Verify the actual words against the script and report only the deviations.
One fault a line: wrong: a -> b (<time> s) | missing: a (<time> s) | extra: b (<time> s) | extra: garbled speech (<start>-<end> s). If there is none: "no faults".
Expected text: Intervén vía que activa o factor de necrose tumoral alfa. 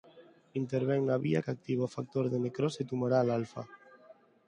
extra: na (1.1 s)